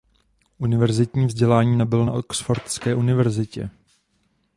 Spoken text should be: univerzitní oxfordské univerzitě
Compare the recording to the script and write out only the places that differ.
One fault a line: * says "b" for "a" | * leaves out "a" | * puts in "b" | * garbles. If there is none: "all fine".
* puts in "vzdělání nabyl na"